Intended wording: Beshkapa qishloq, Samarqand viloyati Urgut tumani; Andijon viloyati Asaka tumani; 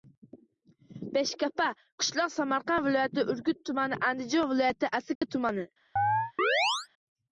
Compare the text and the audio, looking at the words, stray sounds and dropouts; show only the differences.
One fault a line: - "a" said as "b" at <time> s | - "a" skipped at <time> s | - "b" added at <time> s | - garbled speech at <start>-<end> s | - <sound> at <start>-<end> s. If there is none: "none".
- dropout at 5.2-5.2 s
- chirp at 6.0-6.9 s